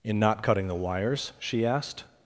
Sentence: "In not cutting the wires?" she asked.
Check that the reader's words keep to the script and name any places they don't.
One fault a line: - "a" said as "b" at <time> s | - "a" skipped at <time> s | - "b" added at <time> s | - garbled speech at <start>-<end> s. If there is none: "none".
none